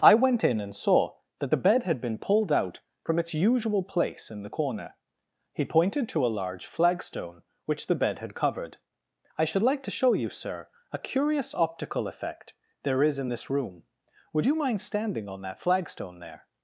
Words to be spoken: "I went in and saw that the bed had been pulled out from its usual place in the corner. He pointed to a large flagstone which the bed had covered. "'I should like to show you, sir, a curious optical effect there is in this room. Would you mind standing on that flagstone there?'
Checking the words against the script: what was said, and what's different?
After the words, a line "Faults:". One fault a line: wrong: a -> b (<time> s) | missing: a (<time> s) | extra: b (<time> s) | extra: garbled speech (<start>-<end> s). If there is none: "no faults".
"I went in and saw that the bed had been pulled out from its usual place in the corner. He pointed to a large flagstone which the bed had covered. "'I should like to show you, sir, a curious optical effect there is in this room. Would you mind standing on that flagstone there?'
Faults:
no faults